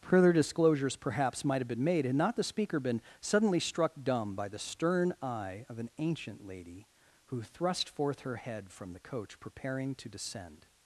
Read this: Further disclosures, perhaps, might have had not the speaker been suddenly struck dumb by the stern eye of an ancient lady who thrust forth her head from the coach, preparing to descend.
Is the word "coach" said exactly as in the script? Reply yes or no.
yes